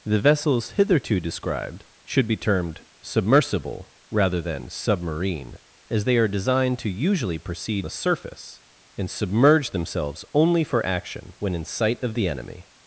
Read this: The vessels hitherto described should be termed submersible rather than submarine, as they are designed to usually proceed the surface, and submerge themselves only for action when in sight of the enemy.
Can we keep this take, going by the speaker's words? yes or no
yes